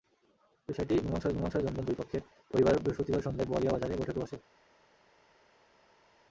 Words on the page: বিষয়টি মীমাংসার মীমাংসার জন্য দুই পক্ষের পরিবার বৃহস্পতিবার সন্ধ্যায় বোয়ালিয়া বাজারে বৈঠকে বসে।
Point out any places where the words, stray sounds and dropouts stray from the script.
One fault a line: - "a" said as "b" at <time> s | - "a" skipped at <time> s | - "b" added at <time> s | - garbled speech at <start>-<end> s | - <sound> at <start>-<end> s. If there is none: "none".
none